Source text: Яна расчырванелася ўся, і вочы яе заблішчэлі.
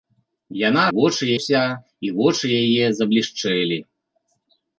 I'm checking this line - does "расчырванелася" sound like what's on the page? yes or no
no